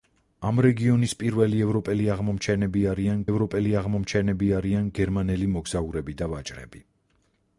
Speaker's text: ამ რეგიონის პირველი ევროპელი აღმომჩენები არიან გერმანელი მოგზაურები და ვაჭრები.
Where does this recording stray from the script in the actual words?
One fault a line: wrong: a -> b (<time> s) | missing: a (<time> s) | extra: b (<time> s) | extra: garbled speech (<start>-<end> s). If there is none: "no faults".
extra: ევროპელი აღმომჩენები არიან (3.3 s)